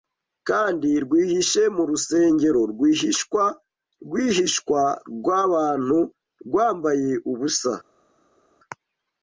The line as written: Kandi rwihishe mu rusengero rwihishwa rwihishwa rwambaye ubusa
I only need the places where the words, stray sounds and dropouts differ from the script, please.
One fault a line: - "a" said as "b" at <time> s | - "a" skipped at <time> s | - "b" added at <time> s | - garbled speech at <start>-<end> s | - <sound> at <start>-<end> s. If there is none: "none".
- "rwabantu" added at 5.2 s